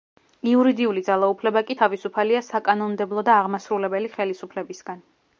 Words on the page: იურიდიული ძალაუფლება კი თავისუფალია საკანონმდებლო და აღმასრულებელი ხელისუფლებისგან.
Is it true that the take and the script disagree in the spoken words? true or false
false